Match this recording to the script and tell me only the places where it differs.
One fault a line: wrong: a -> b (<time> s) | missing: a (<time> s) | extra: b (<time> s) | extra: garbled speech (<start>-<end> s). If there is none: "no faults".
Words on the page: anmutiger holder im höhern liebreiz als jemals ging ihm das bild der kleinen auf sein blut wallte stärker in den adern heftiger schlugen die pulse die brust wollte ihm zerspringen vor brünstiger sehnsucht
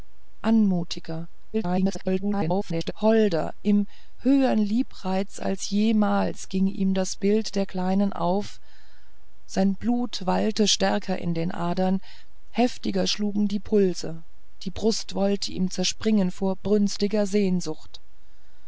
extra: garbled speech (1.5-2.9 s)